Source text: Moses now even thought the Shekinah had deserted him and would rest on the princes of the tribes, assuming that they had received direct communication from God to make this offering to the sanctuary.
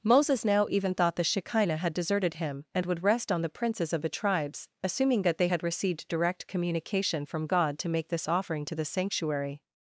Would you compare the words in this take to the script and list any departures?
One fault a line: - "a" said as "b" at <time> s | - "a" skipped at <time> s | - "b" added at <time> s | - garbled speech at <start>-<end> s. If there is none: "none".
none